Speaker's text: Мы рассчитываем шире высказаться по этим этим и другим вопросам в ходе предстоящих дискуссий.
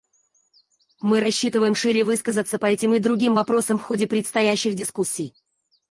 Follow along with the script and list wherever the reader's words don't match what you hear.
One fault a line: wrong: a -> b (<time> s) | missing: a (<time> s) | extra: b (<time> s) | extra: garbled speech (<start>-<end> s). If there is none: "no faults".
missing: этим (2.9 s)